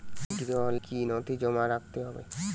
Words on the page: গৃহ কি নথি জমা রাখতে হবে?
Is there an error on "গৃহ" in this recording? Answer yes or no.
no